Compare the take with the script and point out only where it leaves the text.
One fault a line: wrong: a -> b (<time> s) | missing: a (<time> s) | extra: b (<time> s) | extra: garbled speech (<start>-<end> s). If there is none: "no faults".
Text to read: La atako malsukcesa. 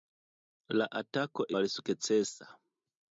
no faults